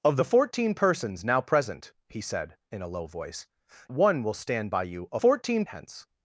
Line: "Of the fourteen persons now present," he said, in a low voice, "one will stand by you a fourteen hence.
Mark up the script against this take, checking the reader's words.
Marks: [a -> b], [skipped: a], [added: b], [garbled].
"Of the fourteen persons now present," he said, in a low voice, "one will stand by you a fourteen hence.